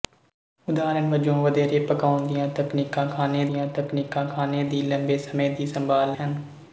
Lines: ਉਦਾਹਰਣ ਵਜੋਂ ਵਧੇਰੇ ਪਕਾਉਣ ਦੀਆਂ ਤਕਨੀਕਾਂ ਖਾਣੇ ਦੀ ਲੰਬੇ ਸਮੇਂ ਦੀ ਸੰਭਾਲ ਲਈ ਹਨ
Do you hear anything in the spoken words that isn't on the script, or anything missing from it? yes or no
yes